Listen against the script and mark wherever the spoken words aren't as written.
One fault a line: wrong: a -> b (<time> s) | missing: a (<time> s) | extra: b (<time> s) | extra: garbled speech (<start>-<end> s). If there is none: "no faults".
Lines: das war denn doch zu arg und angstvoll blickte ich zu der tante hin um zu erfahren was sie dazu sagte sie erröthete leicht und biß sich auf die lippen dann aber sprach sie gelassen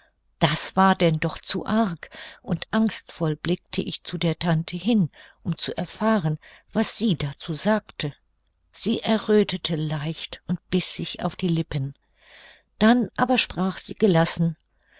no faults